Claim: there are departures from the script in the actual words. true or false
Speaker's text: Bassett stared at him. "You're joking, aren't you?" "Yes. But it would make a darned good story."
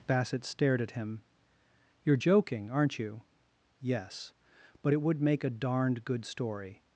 false